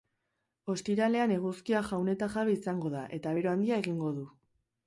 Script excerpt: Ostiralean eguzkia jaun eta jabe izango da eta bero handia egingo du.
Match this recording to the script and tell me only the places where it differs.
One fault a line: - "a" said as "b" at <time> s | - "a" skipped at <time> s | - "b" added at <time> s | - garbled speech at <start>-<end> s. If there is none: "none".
none